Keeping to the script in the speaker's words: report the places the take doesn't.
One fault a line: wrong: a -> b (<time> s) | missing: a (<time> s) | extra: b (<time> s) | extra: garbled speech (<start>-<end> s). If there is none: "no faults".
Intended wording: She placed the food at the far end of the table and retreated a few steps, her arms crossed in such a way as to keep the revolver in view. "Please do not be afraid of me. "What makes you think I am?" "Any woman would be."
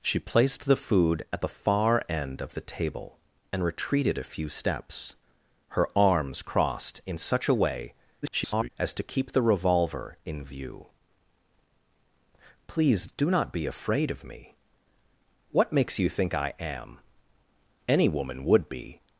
extra: garbled speech (8.2-8.7 s)